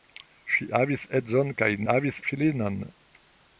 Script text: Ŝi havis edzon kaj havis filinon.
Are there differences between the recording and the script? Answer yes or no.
no